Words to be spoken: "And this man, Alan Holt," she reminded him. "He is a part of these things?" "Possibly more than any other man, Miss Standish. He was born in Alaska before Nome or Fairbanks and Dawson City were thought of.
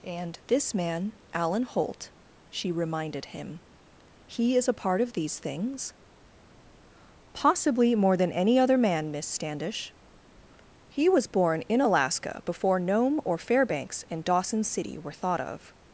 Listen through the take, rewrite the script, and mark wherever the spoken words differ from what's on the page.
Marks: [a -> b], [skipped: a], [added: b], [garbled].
"And this man, Alan Holt," she reminded him. "He is a part of these things?" "Possibly more than any other man, Miss Standish. He was born in Alaska before Nome or Fairbanks and Dawson City were thought of.